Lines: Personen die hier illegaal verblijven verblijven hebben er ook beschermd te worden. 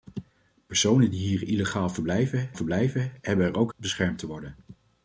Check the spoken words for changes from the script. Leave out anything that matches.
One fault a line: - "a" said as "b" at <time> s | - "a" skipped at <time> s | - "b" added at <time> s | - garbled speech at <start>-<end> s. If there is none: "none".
none